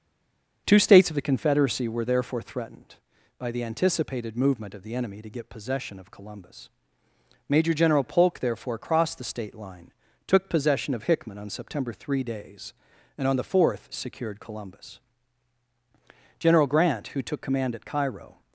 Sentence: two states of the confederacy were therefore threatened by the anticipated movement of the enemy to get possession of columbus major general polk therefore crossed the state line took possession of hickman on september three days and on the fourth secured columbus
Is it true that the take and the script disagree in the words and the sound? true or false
true